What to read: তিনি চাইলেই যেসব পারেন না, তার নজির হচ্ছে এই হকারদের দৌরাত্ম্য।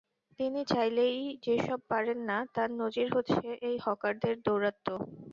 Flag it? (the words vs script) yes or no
no